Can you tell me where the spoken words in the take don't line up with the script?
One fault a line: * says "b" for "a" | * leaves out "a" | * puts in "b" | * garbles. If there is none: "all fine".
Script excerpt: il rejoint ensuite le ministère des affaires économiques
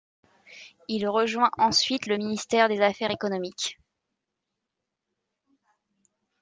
all fine